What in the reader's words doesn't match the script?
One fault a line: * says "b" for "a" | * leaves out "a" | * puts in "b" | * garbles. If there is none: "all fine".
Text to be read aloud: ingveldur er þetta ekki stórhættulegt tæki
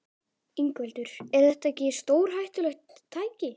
all fine